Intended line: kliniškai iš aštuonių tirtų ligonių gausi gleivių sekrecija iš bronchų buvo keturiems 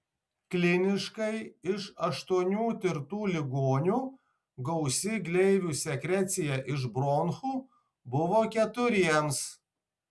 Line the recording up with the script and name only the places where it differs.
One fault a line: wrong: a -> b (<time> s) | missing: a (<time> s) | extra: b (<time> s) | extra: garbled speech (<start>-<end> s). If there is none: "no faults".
no faults